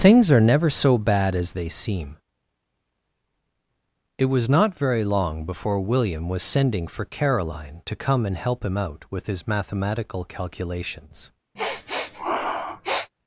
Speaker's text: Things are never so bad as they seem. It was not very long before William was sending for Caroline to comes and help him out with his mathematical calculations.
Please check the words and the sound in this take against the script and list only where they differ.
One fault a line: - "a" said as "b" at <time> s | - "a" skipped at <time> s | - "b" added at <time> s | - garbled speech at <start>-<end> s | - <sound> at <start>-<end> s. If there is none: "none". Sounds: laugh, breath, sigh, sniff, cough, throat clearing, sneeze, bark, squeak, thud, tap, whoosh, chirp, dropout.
- "comes" said as "come" at 8.0 s
- sniff at 11.6-13.1 s